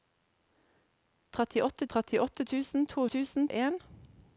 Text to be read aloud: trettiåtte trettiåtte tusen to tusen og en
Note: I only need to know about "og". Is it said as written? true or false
true